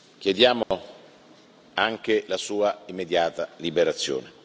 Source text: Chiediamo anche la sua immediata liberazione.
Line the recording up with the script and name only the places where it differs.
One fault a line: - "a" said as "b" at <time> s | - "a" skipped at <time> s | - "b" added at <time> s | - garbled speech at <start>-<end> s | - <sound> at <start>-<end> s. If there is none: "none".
- dropout at 0.6-0.7 s